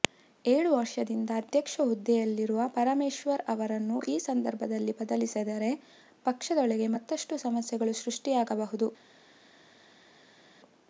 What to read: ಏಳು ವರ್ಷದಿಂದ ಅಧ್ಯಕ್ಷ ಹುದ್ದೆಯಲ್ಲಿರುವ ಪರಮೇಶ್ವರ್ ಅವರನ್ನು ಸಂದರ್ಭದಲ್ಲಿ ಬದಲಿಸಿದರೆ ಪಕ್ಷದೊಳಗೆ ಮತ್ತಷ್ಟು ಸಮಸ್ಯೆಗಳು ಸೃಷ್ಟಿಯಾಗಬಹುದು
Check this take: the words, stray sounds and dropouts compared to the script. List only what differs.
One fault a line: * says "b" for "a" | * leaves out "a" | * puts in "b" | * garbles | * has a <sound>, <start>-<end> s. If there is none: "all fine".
* puts in "ಈ"